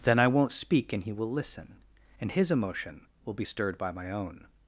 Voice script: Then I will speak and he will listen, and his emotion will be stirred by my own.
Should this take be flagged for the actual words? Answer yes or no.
yes